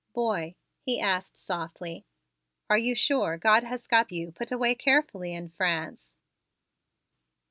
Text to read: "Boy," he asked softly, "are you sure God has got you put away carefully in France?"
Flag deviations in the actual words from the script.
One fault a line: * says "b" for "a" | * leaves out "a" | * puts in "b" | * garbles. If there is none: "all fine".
all fine